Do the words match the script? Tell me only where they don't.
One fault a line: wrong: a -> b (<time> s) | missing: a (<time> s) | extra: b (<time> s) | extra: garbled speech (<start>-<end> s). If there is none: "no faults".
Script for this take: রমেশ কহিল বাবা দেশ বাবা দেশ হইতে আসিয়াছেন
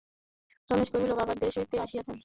missing: বাবা দেশ (1.5 s)